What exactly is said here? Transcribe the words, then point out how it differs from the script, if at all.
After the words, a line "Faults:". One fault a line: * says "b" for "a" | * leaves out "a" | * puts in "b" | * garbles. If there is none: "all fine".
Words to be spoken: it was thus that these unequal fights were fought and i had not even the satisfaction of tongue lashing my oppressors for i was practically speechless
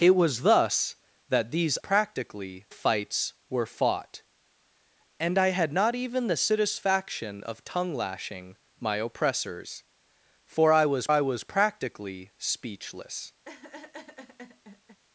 it was thus that these practically fights were fought and i had not even the satisfaction of tongue lashing my oppressors for i was i was practically speechless
Faults:
* says "practically" for "unequal"
* puts in "i was"